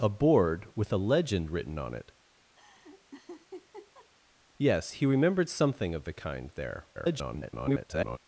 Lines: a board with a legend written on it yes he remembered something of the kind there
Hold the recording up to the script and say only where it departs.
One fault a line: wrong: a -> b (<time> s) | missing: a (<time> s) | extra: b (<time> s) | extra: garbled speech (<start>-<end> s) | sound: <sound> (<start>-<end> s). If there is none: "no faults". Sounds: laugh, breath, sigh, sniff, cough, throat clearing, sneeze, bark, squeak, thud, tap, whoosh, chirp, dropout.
sound: laugh (2.6-4.1 s)
extra: garbled speech (6.9-8.2 s)